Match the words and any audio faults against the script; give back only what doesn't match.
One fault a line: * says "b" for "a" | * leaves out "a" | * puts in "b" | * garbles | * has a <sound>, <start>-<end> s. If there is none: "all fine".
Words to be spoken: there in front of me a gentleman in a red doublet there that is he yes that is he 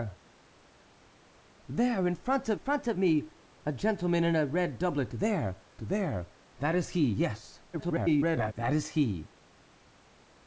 * puts in "front of"
* puts in "there"
* garbles